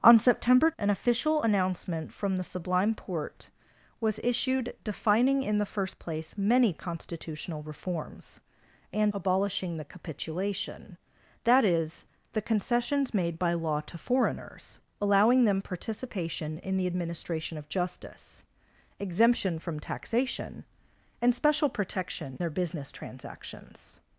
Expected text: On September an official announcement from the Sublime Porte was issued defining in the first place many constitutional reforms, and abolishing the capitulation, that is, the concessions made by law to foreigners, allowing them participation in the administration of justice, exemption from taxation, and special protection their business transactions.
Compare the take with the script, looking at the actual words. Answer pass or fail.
pass